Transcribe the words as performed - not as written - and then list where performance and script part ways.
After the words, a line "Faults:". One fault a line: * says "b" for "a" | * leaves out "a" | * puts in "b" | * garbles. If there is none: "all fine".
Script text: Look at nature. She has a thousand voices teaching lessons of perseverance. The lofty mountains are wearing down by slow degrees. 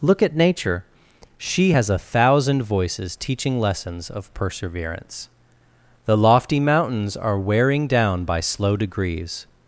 Look at nature. She has a thousand voices teaching lessons of perseverance. The lofty mountains are wearing down by slow degrees.
Faults:
all fine